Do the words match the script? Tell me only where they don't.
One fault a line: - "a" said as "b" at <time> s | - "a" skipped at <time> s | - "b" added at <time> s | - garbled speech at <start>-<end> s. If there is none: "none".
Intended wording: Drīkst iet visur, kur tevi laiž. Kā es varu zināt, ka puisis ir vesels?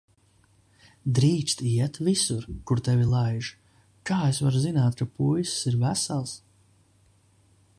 none